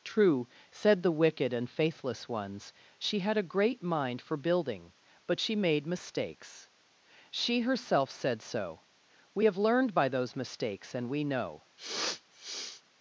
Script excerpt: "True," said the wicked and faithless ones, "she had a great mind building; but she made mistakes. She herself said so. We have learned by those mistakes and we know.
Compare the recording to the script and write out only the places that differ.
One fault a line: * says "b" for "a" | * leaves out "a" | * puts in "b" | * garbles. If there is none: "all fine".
* puts in "for"